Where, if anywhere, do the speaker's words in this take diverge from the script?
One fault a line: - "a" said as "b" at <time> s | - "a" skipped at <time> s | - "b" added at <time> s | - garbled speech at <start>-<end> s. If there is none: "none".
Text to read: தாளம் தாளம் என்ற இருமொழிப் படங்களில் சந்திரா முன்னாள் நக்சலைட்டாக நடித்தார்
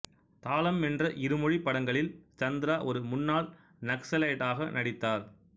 - "தாளம்" skipped at 0.8 s
- "ஒரு" added at 2.8 s